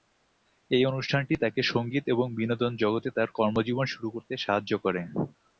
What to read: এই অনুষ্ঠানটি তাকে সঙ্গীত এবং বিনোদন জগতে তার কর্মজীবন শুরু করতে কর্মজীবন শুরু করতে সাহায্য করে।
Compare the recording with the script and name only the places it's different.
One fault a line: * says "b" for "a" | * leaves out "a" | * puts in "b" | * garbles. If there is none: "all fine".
* leaves out "কর্মজীবন শুরু করতে"